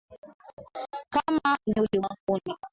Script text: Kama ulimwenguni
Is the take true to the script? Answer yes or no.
yes